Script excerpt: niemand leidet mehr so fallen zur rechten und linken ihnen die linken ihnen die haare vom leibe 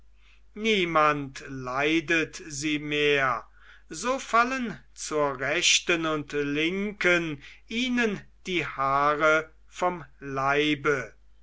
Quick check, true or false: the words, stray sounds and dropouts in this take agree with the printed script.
false